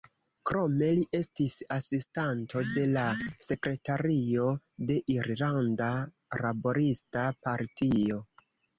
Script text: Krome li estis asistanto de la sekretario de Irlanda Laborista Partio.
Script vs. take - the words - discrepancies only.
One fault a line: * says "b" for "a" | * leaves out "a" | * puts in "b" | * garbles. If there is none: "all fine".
all fine